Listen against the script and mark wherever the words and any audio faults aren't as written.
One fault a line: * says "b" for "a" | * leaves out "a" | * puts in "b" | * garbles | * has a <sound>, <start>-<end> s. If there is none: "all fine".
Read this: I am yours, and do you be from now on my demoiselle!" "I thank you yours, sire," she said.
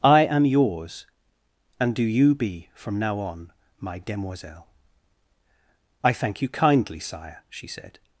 * says "kindly" for "yours"